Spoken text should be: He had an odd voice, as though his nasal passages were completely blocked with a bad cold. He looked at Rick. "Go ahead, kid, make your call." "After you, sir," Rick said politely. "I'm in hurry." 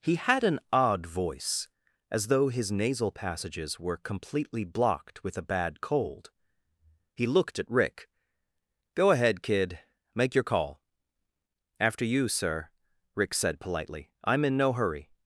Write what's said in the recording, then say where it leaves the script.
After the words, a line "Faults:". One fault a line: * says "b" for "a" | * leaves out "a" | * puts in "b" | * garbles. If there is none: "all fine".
He had an odd voice, as though his nasal passages were completely blocked with a bad cold. He looked at Rick. "Go ahead, kid, make your call." "After you, sir," Rick said politely. "I'm in no hurry."
Faults:
* puts in "no"